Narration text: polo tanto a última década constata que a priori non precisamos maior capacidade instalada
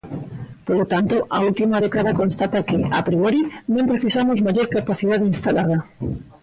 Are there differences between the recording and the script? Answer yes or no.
no